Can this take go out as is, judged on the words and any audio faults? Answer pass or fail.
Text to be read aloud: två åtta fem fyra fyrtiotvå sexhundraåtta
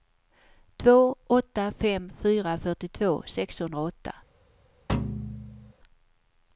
fail